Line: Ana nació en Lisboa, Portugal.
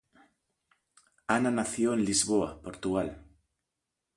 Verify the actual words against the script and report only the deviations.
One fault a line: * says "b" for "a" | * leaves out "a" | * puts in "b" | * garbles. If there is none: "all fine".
all fine